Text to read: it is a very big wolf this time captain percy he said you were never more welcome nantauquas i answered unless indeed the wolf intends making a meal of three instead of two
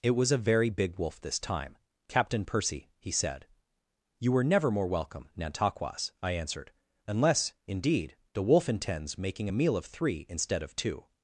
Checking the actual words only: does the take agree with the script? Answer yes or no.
no